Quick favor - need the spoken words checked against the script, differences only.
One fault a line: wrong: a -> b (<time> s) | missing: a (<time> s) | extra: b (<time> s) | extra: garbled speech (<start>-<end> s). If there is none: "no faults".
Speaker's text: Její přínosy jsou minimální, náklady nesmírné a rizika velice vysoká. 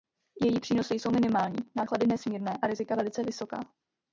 no faults